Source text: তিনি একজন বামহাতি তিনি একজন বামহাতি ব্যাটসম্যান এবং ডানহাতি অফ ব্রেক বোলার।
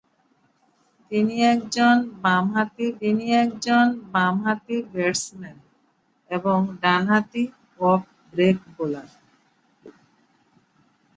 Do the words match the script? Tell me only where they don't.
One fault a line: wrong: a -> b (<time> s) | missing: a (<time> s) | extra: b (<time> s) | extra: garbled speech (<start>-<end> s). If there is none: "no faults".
no faults